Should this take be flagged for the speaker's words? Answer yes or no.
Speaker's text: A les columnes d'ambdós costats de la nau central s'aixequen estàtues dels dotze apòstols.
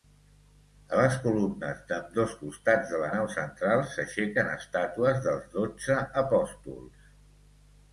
no